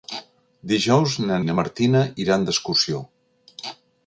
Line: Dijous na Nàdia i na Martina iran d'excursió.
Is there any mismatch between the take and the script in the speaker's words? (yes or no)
yes